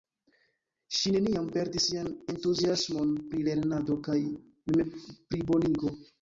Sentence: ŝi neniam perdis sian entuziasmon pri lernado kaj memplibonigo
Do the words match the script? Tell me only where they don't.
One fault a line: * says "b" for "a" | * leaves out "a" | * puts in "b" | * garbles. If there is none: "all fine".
all fine